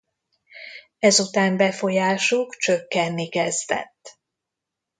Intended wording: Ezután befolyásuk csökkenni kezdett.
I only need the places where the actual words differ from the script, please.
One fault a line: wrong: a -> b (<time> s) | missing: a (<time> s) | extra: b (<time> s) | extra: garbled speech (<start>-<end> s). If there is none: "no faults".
no faults